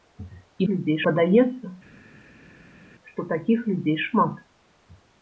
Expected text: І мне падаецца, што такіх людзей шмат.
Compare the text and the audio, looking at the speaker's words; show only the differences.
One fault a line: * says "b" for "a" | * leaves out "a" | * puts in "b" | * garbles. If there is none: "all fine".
* says "людзей" for "мне"